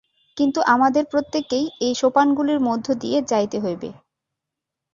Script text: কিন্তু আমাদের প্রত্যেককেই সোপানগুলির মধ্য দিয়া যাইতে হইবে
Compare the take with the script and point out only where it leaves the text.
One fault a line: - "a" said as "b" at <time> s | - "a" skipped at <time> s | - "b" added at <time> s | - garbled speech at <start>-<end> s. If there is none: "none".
- "এই" added at 1.8 s